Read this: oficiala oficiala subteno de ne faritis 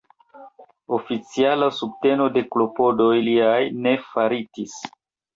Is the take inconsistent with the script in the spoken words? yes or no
yes